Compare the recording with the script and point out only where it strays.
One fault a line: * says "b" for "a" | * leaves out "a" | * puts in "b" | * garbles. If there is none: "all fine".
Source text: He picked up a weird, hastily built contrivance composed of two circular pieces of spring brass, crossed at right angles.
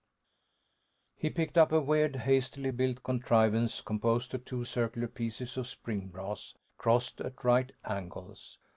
all fine